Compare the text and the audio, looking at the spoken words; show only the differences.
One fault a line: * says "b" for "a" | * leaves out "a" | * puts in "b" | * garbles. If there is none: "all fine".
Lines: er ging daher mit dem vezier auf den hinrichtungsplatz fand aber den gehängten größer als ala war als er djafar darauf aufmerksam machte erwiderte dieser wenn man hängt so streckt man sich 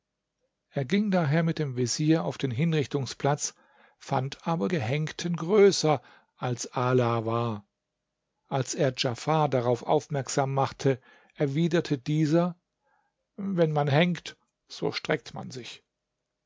* leaves out "den"